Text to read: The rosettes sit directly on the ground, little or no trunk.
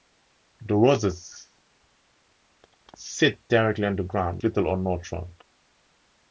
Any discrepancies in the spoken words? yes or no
no